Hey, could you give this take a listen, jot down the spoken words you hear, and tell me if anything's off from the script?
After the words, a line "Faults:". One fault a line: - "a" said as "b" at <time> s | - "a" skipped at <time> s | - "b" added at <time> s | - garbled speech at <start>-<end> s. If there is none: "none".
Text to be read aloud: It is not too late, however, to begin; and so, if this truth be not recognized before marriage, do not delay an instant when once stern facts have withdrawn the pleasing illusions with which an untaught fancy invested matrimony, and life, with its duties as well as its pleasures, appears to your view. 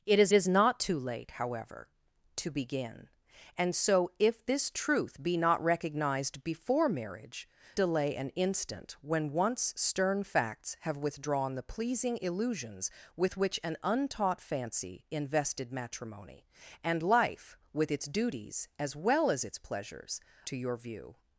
It is is not too late, however, to begin; and so, if this truth be not recognized before marriage, delay an instant when once stern facts have withdrawn the pleasing illusions with which an untaught fancy invested matrimony, and life, with its duties as well as its pleasures, to your view.
Faults:
- "is" added at 0.3 s
- "do not" skipped at 7.5 s
- "appears" skipped at 20.2 s